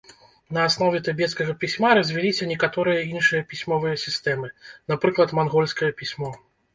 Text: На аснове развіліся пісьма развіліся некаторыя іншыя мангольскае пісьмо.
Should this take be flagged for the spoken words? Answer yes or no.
yes